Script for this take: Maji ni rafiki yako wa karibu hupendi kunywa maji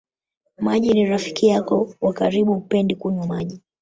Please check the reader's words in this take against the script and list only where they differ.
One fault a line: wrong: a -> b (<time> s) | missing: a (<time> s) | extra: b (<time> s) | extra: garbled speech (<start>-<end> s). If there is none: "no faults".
no faults